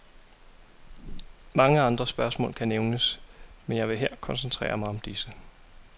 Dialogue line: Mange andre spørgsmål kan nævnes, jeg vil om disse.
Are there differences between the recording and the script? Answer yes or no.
yes